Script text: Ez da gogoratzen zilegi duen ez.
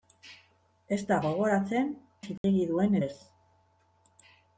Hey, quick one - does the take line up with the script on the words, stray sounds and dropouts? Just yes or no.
no